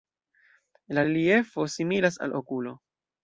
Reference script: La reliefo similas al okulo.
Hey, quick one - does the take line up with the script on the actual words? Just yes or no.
yes